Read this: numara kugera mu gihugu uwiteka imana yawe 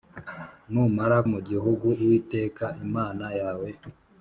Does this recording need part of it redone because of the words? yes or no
yes